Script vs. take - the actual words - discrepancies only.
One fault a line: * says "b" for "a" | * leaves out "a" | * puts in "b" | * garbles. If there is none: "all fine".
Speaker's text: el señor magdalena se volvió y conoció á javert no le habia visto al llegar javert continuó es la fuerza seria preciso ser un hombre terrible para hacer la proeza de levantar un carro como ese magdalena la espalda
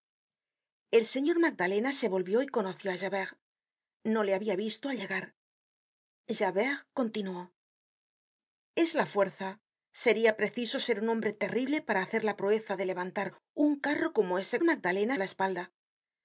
all fine